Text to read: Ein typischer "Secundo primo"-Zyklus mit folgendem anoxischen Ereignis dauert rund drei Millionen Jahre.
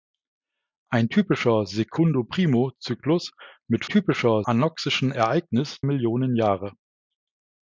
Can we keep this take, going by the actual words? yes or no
no